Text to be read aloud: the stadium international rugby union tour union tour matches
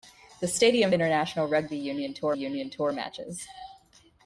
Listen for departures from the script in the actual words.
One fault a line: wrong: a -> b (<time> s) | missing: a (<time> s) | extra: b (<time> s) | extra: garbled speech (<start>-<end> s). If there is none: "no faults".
no faults